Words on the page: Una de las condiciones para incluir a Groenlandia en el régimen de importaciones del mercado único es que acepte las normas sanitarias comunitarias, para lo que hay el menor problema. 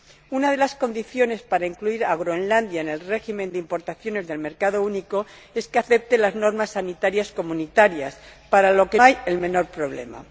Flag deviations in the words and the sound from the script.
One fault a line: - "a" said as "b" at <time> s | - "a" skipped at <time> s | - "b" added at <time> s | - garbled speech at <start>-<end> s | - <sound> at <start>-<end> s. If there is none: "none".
none